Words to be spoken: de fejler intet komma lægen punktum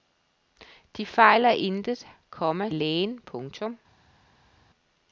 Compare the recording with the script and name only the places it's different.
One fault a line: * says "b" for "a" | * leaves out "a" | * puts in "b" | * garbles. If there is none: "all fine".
all fine